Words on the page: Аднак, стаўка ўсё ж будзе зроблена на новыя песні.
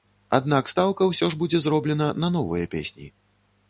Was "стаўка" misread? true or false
false